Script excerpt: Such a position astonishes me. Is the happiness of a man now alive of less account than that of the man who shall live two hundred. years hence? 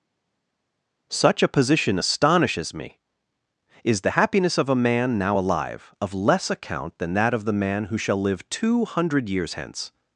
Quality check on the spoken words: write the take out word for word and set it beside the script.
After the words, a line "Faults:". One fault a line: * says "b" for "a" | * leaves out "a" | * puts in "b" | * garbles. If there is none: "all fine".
Such a position astonishes me. Is the happiness of a man now alive of less account than that of the man who shall live two hundred. years hence?
Faults:
all fine